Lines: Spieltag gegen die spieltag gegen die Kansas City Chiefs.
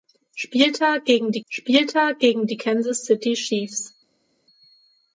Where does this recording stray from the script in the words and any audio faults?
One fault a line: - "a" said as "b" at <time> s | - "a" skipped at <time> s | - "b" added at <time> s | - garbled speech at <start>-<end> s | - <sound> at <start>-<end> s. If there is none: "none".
none